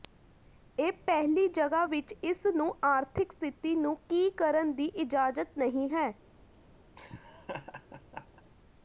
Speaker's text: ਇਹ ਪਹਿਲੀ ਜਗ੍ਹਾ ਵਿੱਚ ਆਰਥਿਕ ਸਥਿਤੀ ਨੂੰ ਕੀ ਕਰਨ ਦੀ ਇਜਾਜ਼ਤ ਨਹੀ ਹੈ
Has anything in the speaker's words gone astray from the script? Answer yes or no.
yes